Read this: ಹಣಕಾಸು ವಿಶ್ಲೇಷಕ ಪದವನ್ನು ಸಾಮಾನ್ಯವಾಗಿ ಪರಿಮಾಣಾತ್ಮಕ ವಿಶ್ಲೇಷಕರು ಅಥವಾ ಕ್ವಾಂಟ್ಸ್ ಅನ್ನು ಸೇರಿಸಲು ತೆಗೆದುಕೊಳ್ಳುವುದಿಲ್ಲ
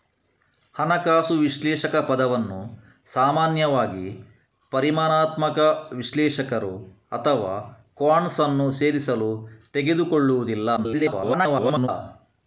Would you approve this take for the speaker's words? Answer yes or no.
no